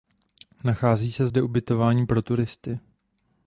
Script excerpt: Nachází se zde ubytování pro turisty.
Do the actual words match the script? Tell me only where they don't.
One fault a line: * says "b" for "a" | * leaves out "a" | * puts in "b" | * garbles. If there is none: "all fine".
all fine